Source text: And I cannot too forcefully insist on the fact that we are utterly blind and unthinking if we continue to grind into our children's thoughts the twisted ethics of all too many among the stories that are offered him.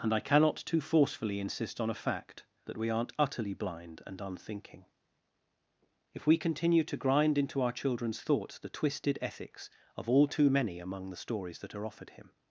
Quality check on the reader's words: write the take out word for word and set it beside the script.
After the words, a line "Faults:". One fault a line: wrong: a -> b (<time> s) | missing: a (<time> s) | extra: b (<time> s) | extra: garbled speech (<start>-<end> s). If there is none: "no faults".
And I cannot too forcefully insist on a fact that we aren't utterly blind and unthinking if we continue to grind into our children's thoughts the twisted ethics of all too many among the stories that are offered him.
Faults:
wrong: the -> a (1.9 s)
wrong: are -> aren't (2.9 s)